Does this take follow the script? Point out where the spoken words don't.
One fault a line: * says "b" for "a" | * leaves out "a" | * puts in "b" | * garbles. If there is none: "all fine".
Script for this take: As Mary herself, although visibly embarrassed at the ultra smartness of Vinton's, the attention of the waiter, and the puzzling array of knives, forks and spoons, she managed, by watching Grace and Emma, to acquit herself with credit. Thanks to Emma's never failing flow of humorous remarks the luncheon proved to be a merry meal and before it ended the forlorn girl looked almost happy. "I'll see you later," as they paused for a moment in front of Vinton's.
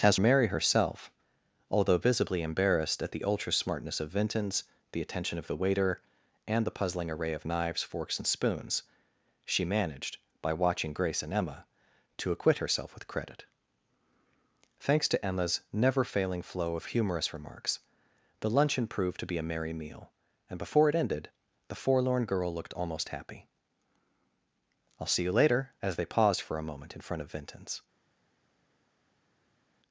all fine